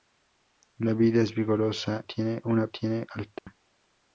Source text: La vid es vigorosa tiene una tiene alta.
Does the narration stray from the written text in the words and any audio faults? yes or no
yes